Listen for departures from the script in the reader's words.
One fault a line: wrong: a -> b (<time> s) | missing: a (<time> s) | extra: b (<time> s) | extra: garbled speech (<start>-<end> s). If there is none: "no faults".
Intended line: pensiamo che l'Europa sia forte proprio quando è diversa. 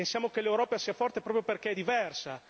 wrong: quando -> perché (1.4 s)